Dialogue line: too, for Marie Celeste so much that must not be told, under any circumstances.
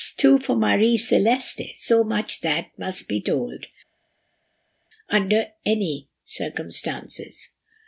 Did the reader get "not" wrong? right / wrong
wrong